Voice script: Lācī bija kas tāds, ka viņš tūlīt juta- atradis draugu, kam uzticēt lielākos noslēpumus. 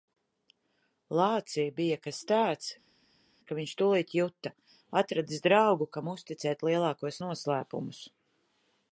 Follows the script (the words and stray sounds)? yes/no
yes